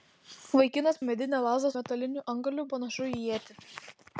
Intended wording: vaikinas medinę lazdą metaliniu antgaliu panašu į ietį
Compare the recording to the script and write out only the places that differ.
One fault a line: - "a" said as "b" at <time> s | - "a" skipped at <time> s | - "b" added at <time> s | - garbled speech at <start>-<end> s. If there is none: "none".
none